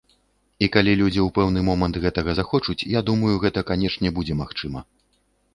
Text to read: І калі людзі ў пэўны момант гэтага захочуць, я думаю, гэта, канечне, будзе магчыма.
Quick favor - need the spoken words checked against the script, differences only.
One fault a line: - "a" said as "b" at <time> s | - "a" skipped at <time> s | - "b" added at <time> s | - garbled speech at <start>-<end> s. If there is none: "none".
none